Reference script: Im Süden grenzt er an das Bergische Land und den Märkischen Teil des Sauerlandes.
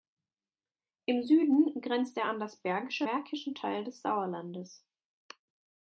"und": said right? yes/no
no